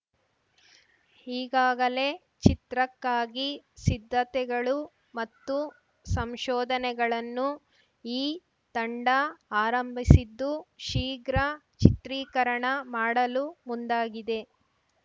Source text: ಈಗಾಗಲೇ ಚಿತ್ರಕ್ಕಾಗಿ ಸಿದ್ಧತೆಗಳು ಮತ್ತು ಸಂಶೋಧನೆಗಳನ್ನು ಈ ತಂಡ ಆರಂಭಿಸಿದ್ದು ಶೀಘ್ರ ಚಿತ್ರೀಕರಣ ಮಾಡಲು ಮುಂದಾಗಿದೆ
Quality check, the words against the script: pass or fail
pass